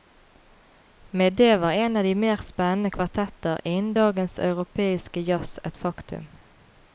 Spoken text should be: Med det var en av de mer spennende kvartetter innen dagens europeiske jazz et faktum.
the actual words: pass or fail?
pass